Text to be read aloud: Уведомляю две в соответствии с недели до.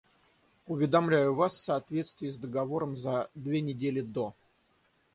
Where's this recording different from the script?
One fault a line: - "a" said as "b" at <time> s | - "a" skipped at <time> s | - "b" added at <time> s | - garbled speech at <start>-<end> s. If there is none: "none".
- "две" said as "вас" at 1.4 s
- "договором за две" added at 2.4 s